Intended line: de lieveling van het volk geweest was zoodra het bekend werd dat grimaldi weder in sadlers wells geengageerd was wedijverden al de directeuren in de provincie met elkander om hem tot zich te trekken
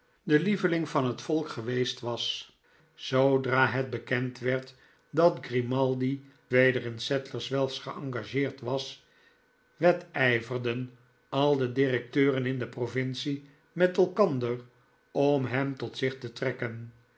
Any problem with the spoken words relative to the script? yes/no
no